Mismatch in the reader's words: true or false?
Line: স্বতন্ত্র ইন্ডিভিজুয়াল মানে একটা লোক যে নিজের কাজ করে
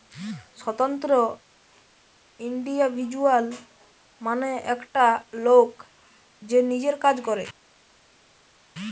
false